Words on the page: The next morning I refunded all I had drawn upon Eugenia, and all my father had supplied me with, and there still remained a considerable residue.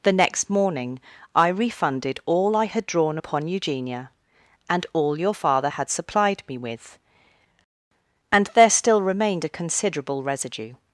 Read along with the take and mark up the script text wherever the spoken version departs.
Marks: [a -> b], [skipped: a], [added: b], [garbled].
The next morning I refunded all I had drawn upon Eugenia, and all [my -> your] father had supplied me with, and there still remained a considerable residue.